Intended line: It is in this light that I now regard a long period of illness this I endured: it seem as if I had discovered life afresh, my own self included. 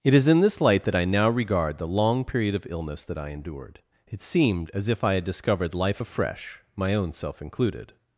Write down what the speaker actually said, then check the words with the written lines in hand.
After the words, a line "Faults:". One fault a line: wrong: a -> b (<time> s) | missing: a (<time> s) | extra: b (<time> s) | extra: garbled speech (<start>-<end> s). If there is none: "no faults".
It is in this light that I now regard the long period of illness that I endured: it seemed as if I had discovered life afresh, my own self included.
Faults:
wrong: a -> the (1.8 s)
wrong: this -> that (3.0 s)
wrong: seem -> seemed (4.2 s)